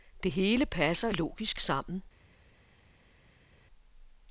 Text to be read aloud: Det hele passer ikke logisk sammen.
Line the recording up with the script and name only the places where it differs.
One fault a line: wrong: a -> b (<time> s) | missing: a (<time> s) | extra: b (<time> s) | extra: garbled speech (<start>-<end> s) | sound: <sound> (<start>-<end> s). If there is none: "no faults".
missing: ikke (1.1 s)